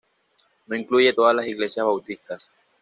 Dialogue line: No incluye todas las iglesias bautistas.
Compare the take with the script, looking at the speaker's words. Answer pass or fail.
pass